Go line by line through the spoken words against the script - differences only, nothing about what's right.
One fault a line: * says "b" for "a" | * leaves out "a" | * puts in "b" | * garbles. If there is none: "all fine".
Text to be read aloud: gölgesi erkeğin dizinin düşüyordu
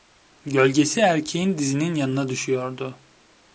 * puts in "yanına"